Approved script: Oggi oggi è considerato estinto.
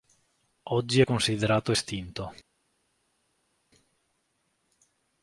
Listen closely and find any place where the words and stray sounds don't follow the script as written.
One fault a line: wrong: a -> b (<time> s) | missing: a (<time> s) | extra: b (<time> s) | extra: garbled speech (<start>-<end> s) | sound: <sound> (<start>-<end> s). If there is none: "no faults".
missing: oggi (1.0 s)